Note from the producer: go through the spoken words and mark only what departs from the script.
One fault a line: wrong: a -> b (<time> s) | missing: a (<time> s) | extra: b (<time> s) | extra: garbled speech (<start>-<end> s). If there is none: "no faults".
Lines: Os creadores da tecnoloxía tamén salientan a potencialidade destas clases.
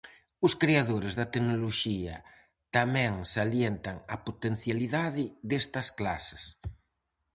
no faults